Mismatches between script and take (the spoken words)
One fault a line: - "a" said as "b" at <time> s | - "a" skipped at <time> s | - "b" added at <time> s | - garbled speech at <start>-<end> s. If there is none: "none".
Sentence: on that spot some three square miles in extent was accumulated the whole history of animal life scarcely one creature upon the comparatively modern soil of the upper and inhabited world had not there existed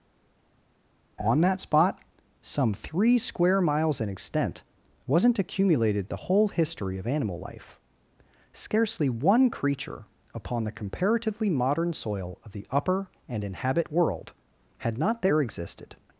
- "was" said as "wasn't" at 5.1 s
- "inhabited" said as "inhabit" at 13.4 s